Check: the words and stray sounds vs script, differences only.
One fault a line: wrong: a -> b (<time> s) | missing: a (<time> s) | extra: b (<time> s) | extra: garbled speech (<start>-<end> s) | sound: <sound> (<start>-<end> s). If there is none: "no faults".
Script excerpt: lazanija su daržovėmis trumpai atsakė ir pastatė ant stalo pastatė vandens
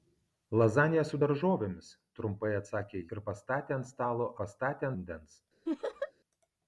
sound: laugh (5.7-6.1 s)